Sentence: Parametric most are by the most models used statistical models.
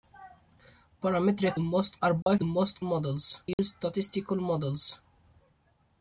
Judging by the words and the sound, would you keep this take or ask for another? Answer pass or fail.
fail